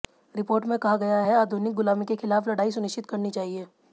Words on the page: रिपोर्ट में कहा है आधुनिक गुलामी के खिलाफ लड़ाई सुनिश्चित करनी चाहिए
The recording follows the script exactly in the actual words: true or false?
false